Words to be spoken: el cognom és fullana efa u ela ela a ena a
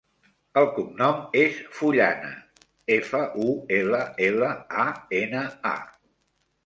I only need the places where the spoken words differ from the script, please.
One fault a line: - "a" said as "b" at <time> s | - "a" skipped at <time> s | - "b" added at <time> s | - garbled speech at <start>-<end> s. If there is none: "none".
none